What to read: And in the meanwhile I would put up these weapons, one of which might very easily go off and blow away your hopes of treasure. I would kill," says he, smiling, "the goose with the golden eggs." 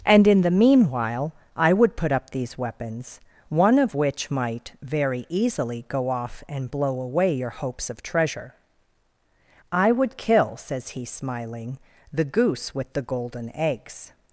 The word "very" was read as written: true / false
true